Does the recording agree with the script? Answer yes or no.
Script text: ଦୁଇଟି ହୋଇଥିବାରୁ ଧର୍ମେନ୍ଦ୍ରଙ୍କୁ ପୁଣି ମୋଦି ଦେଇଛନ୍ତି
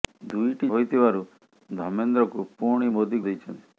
yes